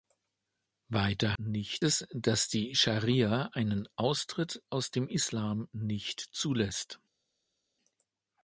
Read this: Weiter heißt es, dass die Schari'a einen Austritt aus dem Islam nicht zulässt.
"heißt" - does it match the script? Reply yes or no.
no